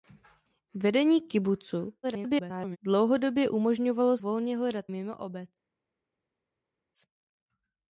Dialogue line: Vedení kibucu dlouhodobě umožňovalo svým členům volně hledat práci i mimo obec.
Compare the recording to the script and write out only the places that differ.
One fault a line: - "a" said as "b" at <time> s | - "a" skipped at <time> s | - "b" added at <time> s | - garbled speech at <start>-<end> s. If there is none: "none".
- garbled speech at 2.0-2.8 s
- "svým členům" skipped at 4.2 s
- "práci i" skipped at 4.8 s